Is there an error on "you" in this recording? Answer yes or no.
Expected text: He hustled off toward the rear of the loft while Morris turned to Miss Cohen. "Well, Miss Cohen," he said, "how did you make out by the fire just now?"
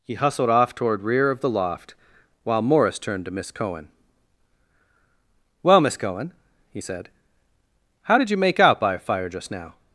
no